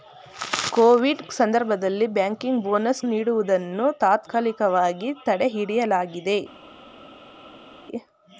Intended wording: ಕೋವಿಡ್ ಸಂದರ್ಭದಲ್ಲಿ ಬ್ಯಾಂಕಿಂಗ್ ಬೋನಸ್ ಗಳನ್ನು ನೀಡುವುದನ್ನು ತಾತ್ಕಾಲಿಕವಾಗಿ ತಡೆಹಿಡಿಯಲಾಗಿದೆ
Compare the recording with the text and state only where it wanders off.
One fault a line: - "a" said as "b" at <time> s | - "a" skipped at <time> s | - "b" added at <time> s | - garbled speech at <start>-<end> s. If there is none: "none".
- "ಗಳನ್ನು" skipped at 3.0 s